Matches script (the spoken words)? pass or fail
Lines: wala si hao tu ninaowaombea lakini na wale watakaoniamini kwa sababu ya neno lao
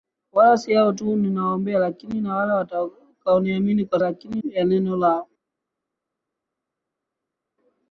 fail